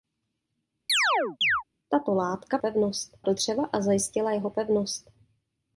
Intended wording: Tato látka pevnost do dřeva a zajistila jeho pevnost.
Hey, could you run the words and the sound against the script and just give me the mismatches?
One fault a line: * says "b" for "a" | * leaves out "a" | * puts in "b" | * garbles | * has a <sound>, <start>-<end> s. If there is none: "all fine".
* has a chirp, 0.9-1.6 s